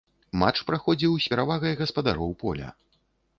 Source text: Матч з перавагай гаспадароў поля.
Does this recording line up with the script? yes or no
no